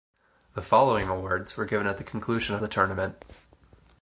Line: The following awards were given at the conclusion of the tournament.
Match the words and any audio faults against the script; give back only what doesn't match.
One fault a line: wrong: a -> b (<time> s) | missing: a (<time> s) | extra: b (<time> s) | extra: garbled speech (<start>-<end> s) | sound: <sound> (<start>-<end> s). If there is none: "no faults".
no faults